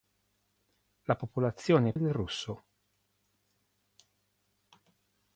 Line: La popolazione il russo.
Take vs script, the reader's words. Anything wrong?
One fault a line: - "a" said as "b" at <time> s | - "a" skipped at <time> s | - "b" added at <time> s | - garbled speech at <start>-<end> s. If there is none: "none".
none